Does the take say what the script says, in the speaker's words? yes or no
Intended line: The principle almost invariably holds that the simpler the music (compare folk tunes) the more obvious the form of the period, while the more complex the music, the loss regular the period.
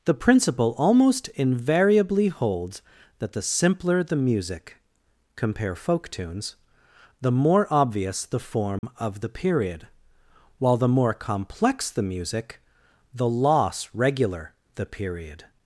yes